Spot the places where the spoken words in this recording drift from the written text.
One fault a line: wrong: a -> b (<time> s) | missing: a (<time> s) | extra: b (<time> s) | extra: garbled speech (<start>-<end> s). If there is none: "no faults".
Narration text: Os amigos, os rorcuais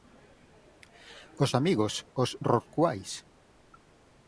no faults